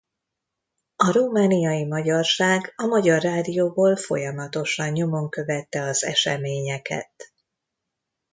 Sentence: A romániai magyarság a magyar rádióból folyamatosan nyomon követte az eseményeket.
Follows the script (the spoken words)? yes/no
yes